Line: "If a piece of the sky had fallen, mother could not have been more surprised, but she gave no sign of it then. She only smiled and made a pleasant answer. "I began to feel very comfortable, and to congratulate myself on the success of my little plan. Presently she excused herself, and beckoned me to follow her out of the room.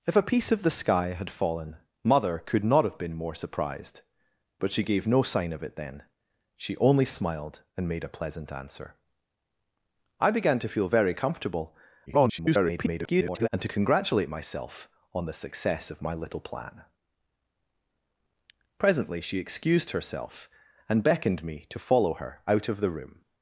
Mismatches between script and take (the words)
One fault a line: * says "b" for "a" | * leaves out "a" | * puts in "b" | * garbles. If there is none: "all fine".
* garbles